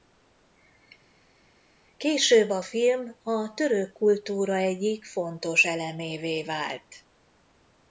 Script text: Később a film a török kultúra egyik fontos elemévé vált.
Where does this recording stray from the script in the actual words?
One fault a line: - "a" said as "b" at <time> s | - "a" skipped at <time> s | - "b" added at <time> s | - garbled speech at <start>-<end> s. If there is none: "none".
none